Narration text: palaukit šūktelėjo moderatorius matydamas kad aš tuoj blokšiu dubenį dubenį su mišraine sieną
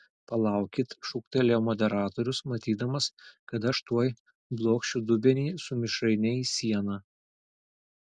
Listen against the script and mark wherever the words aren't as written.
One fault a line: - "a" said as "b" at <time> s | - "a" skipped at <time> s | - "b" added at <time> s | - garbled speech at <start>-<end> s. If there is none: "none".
- "dubenį" skipped at 5.5 s
- "į" added at 6.4 s